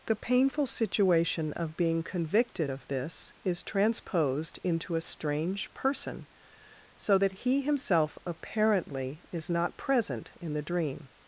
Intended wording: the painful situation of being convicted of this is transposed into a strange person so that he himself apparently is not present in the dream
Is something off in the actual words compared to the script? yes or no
no